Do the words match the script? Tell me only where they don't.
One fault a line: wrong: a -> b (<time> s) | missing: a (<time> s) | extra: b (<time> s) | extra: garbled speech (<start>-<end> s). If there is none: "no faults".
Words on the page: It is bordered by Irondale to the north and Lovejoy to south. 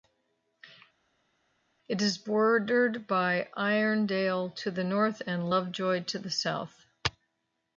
extra: the (6.2 s)